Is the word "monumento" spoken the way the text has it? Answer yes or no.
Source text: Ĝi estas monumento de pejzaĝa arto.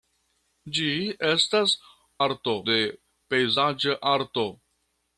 no